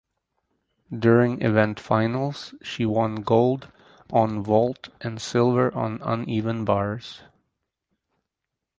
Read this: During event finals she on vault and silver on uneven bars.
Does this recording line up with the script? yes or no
no